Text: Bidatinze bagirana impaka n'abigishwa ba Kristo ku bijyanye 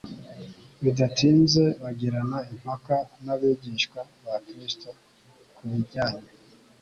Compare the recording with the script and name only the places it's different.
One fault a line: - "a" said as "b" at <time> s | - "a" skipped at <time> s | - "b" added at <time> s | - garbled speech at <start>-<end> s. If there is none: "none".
none